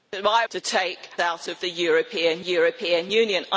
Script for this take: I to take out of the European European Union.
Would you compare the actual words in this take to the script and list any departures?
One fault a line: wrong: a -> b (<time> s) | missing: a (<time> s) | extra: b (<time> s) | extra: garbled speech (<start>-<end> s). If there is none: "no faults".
no faults